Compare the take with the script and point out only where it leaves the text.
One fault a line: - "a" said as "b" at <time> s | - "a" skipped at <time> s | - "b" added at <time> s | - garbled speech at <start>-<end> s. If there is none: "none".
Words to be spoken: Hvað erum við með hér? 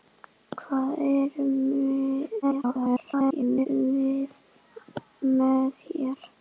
- garbled speech at 2.4-3.7 s